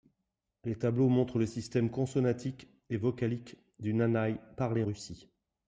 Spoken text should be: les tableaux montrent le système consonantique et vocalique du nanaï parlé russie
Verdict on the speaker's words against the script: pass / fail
pass